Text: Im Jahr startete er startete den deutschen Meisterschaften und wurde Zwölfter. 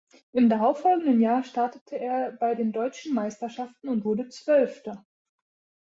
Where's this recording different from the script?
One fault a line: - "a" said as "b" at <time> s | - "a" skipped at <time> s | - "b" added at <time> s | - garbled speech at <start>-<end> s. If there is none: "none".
- "darauffolgenden" added at 0.5 s
- "startete" said as "bei" at 2.3 s